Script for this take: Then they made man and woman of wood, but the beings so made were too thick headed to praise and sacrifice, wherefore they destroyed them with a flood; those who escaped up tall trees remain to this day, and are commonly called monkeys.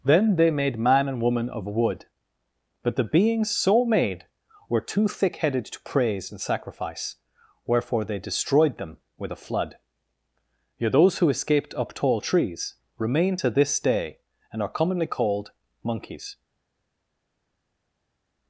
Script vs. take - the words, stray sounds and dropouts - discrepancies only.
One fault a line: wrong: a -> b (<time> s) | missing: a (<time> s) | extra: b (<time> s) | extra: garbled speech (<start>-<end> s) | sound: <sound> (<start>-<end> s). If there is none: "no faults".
extra: yet (10.8 s)